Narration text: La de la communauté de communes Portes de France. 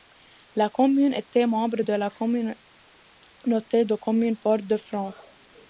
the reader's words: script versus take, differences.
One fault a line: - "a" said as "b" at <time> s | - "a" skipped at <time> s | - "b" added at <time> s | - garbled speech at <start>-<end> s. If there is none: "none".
- "commune était membre" added at 0.7 s